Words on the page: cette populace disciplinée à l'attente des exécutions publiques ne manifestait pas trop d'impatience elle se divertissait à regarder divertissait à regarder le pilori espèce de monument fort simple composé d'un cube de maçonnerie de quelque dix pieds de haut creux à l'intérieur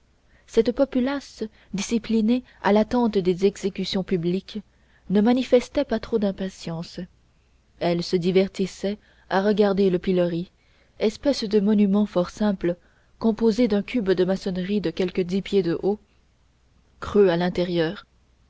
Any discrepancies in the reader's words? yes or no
yes